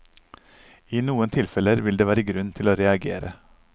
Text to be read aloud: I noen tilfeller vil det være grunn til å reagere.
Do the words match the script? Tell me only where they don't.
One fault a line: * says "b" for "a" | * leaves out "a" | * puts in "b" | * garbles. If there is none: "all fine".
all fine